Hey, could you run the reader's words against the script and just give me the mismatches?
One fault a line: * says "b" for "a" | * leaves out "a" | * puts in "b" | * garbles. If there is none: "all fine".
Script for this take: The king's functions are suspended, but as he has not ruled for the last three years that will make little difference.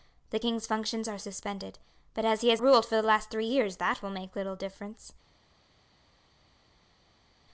* leaves out "not"